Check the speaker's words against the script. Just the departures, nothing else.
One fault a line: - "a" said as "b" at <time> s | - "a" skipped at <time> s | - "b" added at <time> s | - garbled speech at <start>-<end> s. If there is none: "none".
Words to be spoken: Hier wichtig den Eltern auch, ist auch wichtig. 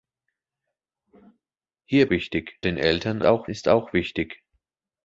none